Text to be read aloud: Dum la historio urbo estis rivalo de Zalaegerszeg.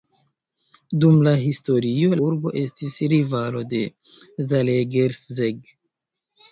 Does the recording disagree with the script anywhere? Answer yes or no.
no